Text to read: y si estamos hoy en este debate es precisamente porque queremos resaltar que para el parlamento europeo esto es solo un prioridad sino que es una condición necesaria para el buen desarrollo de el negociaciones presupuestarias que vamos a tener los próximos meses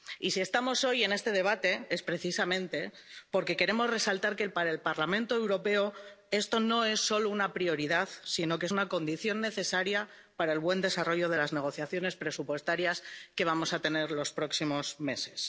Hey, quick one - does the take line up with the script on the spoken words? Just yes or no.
no